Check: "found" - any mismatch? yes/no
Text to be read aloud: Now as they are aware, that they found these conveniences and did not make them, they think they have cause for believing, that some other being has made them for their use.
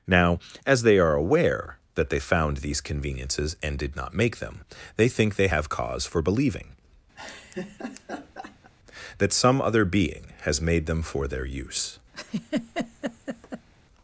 no